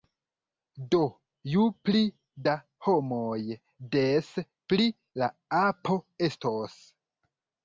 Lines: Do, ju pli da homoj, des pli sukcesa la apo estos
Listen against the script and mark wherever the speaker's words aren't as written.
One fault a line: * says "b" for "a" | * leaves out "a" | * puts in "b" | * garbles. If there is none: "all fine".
* leaves out "sukcesa"